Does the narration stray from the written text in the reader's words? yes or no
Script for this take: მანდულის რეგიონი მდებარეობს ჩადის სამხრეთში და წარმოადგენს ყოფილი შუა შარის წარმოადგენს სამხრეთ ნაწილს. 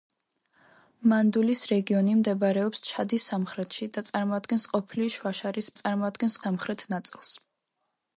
no